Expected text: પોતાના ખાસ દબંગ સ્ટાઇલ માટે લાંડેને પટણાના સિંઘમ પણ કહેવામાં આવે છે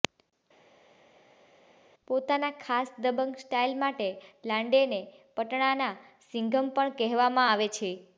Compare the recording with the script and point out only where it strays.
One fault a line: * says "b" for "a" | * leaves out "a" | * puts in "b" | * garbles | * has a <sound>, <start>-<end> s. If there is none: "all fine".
all fine